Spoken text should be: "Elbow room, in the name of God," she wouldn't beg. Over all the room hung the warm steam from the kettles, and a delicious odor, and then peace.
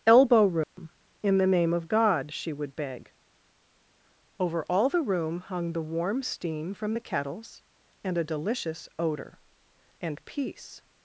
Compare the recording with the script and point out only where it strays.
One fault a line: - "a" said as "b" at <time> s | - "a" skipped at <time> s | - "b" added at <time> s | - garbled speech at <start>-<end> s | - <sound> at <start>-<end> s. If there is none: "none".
- dropout at 0.6-0.8 s
- "wouldn't" said as "would" at 2.5 s
- "then" skipped at 10.2 s